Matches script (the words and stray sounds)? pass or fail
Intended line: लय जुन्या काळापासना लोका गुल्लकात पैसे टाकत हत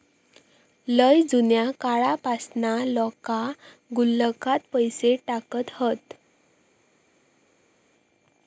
pass